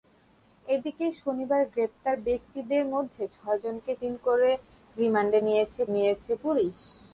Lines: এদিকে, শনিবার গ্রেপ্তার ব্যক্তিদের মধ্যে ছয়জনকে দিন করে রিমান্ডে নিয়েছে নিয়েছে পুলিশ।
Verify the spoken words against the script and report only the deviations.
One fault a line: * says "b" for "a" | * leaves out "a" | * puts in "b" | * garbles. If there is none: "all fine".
all fine